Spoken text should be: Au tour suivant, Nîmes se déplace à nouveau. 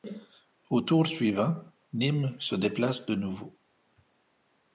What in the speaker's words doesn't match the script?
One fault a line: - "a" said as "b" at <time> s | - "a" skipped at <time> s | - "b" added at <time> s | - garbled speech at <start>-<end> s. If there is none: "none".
- "à" said as "de" at 3.0 s